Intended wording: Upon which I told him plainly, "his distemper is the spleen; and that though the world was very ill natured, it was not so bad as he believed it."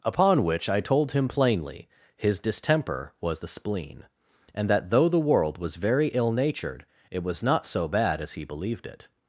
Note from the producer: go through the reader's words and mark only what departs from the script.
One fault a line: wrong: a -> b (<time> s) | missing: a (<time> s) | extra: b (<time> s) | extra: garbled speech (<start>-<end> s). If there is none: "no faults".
wrong: is -> was (3.2 s)